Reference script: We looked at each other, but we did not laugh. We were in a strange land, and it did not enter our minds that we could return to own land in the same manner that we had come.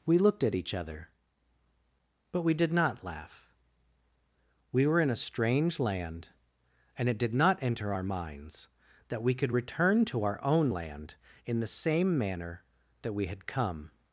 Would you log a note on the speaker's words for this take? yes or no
yes